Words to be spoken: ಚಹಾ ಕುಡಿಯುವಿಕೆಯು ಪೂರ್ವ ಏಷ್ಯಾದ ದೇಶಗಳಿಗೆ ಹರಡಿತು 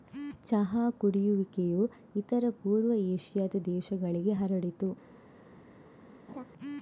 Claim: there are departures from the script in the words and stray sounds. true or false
true